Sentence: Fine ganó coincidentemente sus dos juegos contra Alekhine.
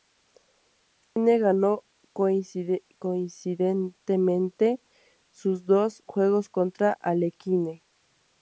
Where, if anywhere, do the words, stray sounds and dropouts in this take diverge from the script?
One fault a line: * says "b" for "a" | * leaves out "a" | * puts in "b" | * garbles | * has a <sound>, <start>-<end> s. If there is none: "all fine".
* has a dropout, 1.0-1.2 s